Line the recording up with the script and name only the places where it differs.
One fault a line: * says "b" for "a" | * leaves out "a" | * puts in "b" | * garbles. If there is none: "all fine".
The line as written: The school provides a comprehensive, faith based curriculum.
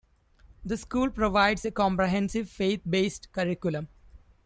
all fine